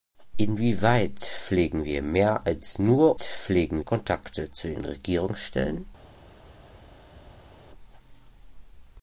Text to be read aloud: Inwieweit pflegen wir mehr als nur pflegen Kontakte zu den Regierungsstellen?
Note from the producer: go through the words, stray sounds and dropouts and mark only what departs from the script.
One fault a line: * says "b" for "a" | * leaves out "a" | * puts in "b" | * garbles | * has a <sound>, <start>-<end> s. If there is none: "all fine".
all fine